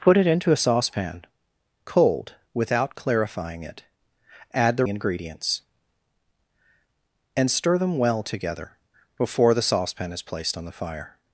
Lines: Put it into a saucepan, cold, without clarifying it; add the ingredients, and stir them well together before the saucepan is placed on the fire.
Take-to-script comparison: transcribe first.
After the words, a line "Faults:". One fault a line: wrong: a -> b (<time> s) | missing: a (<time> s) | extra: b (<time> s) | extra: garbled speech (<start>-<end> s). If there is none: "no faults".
Put it into a saucepan, cold, without clarifying it; add the ingredients, and stir them well together before the saucepan is placed on the fire.
Faults:
no faults